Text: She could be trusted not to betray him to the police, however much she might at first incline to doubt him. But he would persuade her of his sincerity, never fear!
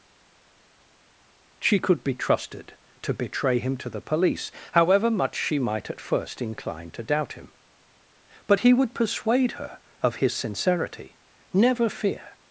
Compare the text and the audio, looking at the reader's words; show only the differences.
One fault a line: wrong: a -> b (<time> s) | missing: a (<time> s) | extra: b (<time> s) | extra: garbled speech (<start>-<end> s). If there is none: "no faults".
missing: not (2.8 s)